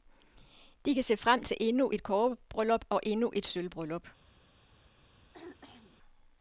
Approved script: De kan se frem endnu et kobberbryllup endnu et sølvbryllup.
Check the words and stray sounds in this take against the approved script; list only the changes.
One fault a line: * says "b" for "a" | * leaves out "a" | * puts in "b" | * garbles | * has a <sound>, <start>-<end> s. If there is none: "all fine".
* puts in "til"
* puts in "og"
* has a throat clearing, 5.3-6.0 s